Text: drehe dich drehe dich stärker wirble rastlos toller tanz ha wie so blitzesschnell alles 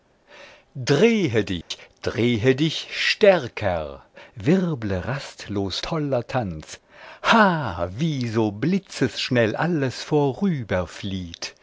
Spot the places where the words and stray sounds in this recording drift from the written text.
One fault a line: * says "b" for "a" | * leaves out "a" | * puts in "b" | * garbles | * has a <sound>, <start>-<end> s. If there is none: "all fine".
* has a dropout, 1.6-1.7 s